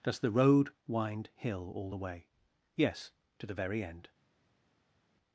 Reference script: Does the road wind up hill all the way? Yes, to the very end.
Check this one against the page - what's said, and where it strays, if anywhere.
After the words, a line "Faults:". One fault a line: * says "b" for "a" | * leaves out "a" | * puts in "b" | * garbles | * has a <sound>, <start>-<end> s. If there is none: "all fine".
Does the road wind hill all the way? Yes, to the very end.
Faults:
* leaves out "up"